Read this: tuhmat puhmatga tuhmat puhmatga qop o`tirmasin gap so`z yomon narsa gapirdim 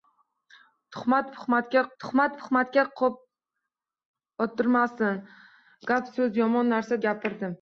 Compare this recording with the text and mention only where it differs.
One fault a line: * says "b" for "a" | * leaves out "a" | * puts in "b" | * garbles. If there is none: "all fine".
all fine